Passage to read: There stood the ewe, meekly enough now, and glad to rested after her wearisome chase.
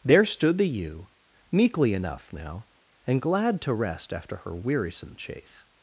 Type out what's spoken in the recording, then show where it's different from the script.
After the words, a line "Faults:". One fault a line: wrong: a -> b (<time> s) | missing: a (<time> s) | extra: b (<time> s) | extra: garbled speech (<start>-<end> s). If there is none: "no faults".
There stood the ewe, meekly enough now, and glad to rest after her wearisome chase.
Faults:
wrong: rested -> rest (3.7 s)